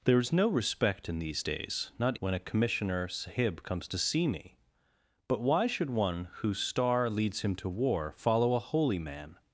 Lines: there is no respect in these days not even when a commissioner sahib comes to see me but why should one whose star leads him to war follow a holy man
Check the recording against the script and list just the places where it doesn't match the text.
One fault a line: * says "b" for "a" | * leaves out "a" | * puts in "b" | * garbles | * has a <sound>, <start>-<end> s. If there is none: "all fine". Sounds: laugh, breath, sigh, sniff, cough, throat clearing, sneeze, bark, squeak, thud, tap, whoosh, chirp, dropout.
* leaves out "even"